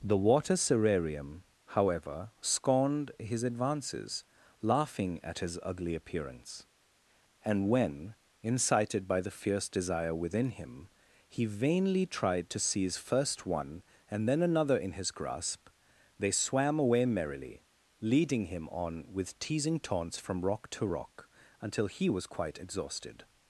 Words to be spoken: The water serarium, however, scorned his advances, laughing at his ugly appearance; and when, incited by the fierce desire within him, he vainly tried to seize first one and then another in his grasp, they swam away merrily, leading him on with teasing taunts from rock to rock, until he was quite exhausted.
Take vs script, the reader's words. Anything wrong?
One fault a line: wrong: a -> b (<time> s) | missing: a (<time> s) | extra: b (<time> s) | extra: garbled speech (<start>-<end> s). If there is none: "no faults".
no faults